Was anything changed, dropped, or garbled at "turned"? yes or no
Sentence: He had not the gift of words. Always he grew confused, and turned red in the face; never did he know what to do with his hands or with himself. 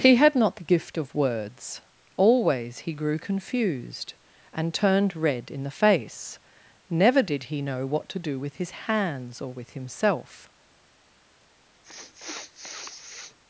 no